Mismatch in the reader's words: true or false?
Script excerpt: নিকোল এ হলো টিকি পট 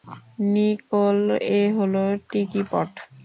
false